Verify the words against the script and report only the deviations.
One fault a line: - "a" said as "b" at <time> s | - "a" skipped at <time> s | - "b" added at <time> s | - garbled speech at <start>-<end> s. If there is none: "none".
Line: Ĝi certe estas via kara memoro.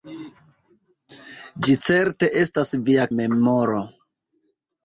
- "kara" skipped at 3.1 s